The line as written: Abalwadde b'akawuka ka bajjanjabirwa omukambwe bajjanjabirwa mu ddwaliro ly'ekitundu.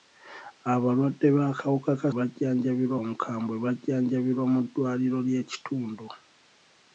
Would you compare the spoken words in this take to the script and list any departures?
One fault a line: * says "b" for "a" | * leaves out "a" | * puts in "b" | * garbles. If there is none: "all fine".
all fine